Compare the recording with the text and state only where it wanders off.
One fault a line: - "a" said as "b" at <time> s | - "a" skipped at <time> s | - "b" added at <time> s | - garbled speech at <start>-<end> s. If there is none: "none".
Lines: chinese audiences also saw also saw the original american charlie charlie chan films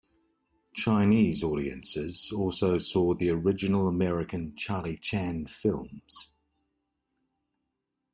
- "also saw" skipped at 3.1 s
- "charlie" skipped at 5.0 s